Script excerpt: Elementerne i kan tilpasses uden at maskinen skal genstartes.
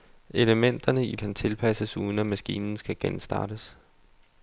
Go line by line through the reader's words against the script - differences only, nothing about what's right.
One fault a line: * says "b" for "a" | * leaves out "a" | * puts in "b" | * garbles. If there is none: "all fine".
all fine